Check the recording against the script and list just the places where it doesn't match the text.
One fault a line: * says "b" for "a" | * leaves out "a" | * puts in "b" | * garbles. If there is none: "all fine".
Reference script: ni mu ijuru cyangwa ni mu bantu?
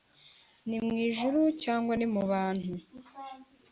all fine